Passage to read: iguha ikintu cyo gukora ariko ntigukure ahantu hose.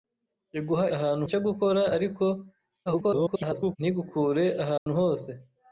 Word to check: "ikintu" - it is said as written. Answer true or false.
false